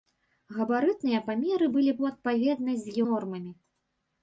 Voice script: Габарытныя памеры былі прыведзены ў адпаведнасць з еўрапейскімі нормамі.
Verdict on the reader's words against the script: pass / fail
fail